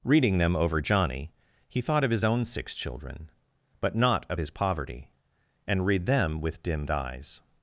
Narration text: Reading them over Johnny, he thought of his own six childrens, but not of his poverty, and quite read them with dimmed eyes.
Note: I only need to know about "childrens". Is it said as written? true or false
false